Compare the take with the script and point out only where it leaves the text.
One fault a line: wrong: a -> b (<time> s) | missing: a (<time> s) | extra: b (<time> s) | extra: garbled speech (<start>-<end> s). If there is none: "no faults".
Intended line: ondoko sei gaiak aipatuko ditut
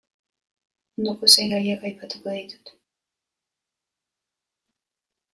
no faults